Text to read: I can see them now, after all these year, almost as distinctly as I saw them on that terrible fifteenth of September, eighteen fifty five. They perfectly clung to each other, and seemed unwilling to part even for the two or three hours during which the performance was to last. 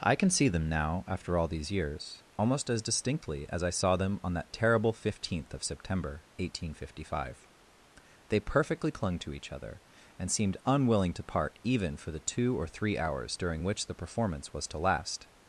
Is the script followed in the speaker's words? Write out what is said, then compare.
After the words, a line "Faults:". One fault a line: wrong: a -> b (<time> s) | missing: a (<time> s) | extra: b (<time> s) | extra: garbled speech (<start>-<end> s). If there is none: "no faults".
I can see them now, after all these years, almost as distinctly as I saw them on that terrible fifteenth of September, eighteen fifty five. They perfectly clung to each other, and seemed unwilling to part even for the two or three hours during which the performance was to last.
Faults:
wrong: year -> years (1.7 s)